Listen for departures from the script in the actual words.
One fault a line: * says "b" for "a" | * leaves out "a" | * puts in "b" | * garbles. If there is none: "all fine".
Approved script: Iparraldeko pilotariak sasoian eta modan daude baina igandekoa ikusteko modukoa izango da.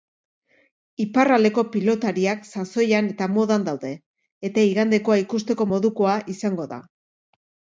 * says "eta" for "baina"